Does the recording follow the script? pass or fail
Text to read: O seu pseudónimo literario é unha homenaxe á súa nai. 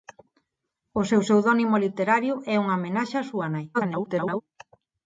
fail